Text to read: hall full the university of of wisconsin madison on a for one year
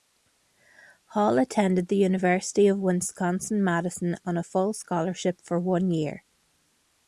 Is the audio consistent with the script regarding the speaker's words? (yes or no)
no